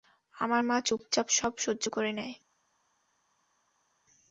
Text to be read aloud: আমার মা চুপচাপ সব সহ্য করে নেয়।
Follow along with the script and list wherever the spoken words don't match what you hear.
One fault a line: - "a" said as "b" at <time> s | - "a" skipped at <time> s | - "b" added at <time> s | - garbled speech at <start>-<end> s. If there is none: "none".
none